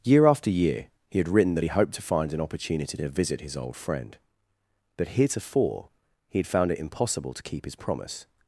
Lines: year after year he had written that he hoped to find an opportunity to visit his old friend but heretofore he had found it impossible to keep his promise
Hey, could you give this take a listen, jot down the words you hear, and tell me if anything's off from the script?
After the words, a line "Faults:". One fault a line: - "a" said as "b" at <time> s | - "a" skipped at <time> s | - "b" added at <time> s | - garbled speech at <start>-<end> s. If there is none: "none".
year after year he had written that he hoped to find an opportunity to visit his old friend but heretofore he had found it impossible to keep his promise
Faults:
none